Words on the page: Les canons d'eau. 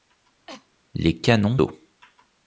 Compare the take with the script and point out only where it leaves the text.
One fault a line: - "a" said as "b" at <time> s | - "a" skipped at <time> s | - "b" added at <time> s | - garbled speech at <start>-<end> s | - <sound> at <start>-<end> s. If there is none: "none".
- cough at 0.5-0.7 s